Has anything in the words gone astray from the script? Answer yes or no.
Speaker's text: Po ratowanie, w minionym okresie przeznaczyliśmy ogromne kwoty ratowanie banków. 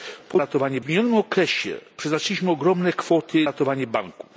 no